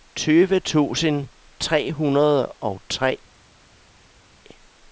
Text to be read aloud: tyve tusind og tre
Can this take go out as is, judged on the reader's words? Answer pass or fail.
fail